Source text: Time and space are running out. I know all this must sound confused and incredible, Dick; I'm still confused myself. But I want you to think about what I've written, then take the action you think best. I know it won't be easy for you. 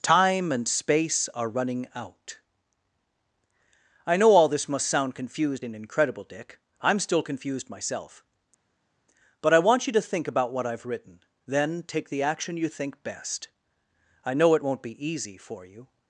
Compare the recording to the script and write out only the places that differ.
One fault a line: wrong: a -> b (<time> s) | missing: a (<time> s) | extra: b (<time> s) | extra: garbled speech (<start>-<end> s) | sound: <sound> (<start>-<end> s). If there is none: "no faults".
no faults